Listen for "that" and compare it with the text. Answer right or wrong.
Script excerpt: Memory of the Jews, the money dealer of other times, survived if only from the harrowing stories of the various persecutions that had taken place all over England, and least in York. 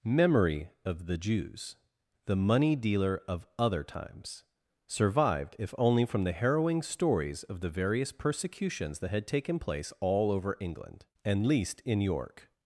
right